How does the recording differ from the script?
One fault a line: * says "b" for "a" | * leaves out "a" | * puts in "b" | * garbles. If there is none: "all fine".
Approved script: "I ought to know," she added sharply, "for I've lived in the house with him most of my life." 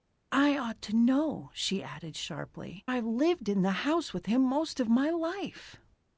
* leaves out "for"